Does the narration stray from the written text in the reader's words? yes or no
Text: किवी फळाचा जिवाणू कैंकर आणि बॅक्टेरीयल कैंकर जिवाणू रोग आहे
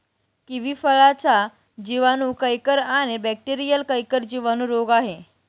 no